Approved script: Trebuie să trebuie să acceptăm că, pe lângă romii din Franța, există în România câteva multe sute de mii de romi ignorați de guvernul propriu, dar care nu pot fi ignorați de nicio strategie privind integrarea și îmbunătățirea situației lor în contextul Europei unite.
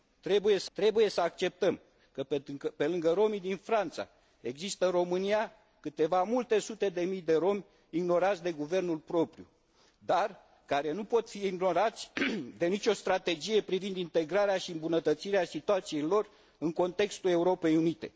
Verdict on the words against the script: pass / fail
pass